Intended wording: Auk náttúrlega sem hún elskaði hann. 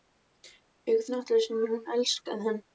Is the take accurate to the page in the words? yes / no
yes